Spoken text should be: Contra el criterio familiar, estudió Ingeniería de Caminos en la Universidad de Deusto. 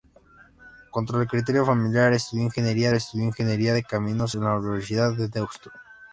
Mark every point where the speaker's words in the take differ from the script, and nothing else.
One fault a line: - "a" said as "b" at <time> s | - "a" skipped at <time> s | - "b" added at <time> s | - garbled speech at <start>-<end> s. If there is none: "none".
- "estudió Ingeniería" added at 2.9 s